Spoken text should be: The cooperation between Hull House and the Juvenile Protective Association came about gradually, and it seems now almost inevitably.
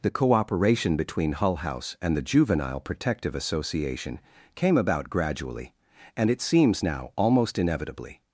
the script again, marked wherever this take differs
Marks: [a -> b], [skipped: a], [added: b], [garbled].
The cooperation between Hull House and the Juvenile Protective Association came about gradually, and it seems now almost inevitably.